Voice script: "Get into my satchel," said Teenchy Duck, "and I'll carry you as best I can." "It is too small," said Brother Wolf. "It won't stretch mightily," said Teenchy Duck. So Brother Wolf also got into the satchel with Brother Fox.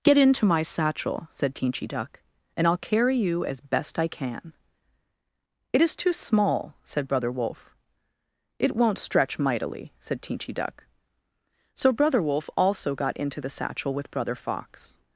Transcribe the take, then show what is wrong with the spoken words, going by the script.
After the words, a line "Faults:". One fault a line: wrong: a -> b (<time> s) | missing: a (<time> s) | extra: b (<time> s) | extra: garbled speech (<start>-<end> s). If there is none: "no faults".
"Get into my satchel," said Teenchy Duck, "and I'll carry you as best I can." "It is too small," said Brother Wolf. "It won't stretch mightily," said Teenchy Duck. So Brother Wolf also got into the satchel with Brother Fox.
Faults:
no faults